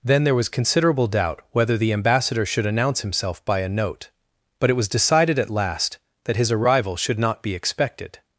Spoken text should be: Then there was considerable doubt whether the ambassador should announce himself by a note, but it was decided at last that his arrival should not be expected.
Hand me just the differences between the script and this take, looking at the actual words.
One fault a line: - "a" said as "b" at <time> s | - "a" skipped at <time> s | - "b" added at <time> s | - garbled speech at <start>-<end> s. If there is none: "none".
none